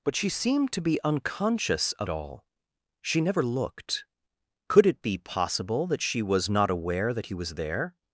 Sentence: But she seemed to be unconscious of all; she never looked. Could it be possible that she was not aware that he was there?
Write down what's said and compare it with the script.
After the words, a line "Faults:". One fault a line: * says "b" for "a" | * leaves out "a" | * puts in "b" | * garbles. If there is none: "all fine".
But she seemed to be unconscious of all; she never looked. Could it be possible that she was not aware that he was there?
Faults:
all fine